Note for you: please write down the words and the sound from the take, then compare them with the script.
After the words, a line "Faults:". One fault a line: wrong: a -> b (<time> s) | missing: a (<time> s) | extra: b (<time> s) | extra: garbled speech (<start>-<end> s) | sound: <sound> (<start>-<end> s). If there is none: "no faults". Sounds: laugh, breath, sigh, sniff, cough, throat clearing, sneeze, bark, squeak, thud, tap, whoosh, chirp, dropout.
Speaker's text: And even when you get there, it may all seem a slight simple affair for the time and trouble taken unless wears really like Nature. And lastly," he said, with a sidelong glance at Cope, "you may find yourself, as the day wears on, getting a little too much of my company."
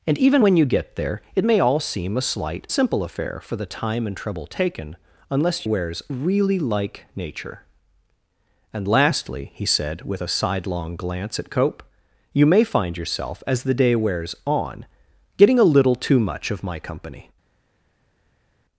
And even when you get there, it may all seem a slight simple affair for the time and trouble taken unless wears really like Nature. And lastly," he said, with a sidelong glance at Cope, "you may find yourself, as the day wears on, getting a little too much of my company."
Faults:
no faults